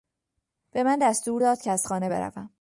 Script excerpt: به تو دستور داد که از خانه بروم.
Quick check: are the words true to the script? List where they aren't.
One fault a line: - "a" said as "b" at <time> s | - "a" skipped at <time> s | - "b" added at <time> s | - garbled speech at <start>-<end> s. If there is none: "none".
- "تو" said as "من" at 0.8 s